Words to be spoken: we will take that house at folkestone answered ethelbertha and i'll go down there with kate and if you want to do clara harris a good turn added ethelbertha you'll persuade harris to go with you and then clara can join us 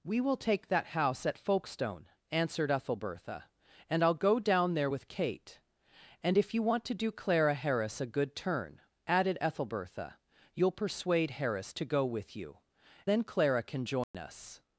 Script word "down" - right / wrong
right